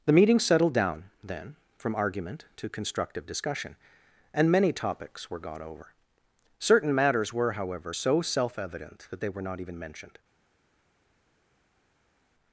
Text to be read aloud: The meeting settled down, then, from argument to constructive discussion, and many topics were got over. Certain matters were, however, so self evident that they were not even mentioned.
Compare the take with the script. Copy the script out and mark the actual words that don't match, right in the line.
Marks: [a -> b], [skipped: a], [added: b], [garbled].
The meeting settled down, then, from argument to constructive discussion, and many topics were got over. Certain matters were, however, so self evident that they were not even mentioned.